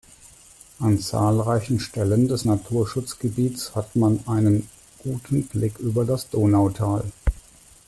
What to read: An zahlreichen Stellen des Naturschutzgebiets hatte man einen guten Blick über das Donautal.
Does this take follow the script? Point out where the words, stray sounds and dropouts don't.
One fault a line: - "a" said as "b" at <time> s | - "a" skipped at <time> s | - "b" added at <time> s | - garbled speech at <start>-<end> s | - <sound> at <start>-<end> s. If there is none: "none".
- "hatte" said as "hat" at 3.7 s